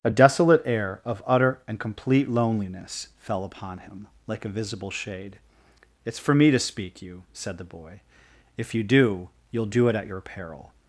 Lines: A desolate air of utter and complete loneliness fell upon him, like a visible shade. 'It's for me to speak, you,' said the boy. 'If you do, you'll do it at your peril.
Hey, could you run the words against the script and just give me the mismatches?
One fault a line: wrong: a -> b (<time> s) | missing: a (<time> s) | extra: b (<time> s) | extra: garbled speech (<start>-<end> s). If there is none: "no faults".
no faults